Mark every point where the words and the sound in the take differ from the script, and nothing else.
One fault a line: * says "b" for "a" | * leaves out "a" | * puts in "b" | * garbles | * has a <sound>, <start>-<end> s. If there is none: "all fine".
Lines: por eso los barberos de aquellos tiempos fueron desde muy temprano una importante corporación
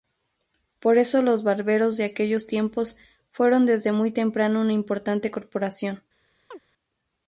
* has a chirp, 6.5-6.6 s